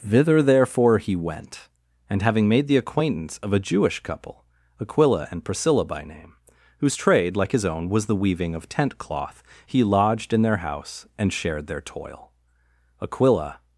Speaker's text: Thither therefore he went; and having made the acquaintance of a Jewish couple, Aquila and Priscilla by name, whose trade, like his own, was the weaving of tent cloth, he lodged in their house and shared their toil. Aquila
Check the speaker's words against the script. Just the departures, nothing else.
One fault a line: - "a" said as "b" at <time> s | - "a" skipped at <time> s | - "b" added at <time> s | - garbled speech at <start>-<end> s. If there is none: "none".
none